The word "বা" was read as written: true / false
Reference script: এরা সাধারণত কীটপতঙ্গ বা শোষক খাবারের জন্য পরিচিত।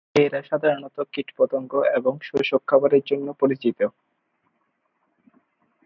false